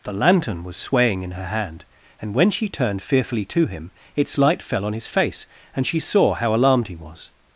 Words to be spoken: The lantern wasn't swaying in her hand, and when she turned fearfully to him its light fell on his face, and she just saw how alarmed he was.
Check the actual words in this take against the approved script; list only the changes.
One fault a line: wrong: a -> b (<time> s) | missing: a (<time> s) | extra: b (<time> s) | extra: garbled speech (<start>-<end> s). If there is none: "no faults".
wrong: wasn't -> was (0.6 s)
missing: just (6.0 s)